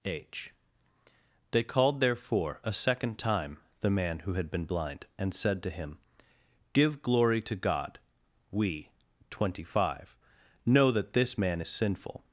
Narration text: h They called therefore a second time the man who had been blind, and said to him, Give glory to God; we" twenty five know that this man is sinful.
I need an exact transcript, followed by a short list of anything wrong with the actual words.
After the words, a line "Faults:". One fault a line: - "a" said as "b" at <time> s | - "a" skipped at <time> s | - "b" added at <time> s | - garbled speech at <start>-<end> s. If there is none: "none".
h They called therefore a second time the man who had been blind, and said to him, Give glory to God; we" twenty five know that this man is sinful.
Faults:
none